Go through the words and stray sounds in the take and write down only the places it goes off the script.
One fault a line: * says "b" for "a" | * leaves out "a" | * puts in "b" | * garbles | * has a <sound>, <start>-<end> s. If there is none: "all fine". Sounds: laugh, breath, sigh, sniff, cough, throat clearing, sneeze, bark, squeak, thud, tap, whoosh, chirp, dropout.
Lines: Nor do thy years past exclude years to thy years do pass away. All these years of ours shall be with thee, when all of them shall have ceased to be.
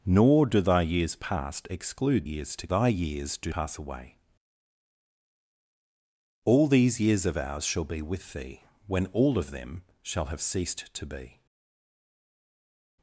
all fine